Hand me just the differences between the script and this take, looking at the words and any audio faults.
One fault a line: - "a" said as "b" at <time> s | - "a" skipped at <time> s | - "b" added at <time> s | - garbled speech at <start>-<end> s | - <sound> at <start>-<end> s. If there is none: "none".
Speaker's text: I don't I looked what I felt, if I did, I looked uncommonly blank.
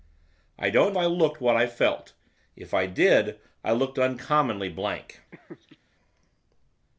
- laugh at 5.3-5.8 s